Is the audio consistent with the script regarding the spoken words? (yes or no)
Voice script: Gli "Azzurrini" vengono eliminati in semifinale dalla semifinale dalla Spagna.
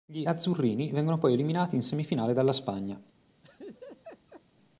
no